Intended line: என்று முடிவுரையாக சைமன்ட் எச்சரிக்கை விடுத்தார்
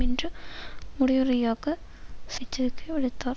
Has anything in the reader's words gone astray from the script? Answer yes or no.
yes